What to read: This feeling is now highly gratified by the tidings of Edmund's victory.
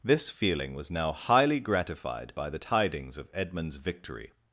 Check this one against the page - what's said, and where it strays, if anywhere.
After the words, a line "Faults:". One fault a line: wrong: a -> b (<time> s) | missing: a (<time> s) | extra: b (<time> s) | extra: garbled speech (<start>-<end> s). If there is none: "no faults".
This feeling was now highly gratified by the tidings of Edmund's victory.
Faults:
wrong: is -> was (0.7 s)